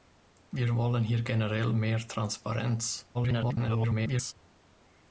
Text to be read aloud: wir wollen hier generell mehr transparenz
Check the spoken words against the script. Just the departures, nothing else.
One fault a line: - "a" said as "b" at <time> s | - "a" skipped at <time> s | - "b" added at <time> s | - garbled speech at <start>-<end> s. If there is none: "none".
- garbled speech at 3.1-4.3 s